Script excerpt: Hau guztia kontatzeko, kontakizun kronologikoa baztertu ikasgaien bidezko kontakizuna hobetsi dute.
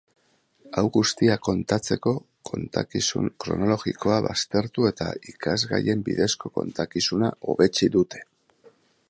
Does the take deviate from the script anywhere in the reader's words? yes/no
yes